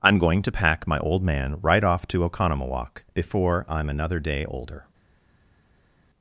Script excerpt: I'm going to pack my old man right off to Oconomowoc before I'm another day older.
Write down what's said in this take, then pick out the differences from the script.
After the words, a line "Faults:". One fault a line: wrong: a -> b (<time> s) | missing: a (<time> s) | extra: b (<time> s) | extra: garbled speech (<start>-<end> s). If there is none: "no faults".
I'm going to pack my old man right off to Oconomowoc before I'm another day older.
Faults:
no faults